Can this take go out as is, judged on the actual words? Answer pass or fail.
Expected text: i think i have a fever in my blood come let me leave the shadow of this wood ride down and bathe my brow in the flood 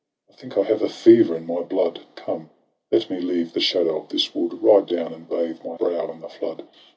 pass